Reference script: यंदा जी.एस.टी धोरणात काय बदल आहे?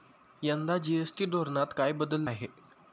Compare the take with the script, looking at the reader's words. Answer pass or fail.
pass